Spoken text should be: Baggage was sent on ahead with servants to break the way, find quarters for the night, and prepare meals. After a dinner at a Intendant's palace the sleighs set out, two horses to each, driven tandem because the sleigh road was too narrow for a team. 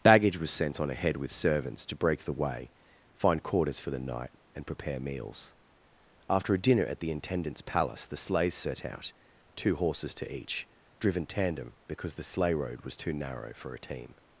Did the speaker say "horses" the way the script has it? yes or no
yes